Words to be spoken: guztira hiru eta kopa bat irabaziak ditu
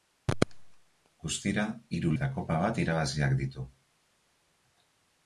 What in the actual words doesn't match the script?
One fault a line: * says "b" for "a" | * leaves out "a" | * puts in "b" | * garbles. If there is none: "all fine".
all fine